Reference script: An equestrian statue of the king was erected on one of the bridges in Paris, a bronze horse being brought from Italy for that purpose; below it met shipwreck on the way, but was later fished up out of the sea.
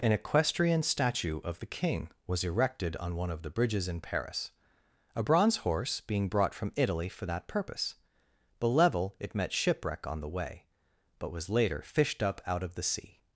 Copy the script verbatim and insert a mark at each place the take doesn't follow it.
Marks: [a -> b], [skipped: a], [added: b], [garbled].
An equestrian statue of the king was erected on one of the bridges in Paris, a bronze horse being brought from Italy for that purpose; below it met shipwreck on the way, but was later fished up out of the sea.